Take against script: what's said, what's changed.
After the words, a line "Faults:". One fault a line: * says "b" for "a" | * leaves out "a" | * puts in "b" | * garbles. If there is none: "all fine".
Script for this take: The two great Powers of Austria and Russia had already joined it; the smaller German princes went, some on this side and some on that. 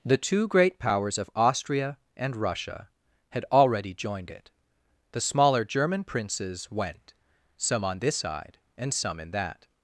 The two great Powers of Austria and Russia had already joined it; the smaller German princes went, some on this side and some in that.
Faults:
* says "in" for "on"